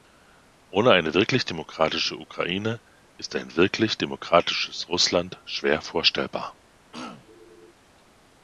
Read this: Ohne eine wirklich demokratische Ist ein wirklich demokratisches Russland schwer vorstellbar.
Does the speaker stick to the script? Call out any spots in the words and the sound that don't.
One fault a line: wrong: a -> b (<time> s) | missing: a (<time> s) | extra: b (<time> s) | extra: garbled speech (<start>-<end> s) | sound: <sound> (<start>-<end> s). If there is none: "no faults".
extra: Ukraine (2.2 s)
sound: throat clearing (6.9-7.7 s)